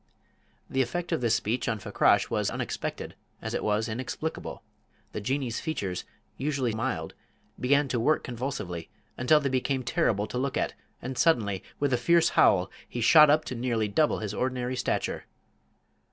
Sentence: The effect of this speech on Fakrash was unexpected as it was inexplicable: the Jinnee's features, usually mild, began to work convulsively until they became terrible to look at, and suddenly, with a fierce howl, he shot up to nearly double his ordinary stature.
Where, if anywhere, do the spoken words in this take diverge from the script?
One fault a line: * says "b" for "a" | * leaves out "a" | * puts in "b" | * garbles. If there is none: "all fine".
all fine